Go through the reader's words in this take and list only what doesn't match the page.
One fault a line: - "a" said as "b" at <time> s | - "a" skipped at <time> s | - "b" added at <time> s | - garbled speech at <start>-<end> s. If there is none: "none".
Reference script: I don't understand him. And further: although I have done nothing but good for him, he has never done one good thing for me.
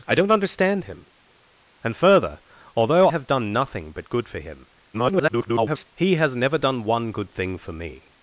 - "I" skipped at 3.1 s
- garbled speech at 4.9-5.9 s